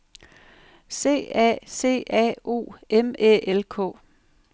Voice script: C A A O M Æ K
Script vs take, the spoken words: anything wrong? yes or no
yes